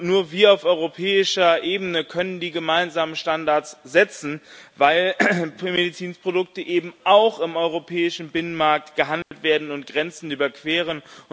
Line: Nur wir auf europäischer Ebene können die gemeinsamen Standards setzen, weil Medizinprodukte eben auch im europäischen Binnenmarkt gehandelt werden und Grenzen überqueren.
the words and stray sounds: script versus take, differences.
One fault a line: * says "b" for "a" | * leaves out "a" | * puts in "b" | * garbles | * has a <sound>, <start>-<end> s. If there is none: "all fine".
* has a dropout, 9.2-9.3 s